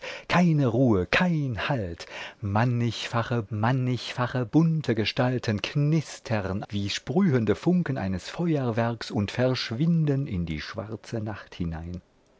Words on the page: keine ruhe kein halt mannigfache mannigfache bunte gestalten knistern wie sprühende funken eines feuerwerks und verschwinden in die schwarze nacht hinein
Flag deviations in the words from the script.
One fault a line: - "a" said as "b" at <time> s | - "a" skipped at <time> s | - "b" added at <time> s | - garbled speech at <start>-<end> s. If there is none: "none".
none